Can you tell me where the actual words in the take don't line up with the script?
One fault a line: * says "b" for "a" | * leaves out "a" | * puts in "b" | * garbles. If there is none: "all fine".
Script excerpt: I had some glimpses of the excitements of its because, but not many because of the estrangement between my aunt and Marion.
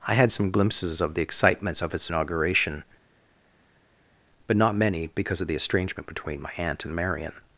* says "inauguration" for "because"